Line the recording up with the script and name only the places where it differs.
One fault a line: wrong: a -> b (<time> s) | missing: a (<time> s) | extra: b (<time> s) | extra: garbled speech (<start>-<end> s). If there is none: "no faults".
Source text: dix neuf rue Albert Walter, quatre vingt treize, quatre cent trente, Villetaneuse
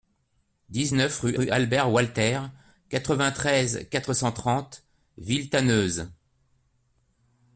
extra: rue (1.3 s)